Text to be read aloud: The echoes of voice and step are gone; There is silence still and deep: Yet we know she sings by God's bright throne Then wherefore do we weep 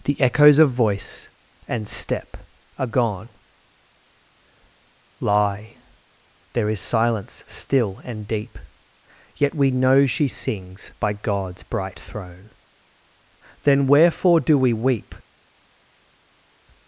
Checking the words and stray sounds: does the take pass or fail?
fail